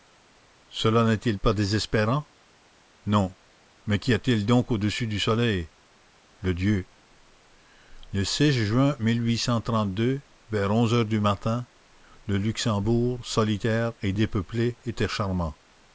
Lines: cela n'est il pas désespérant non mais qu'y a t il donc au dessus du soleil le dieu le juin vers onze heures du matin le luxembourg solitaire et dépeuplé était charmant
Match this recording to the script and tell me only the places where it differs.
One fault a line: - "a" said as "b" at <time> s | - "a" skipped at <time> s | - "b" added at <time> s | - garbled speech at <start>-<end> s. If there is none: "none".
none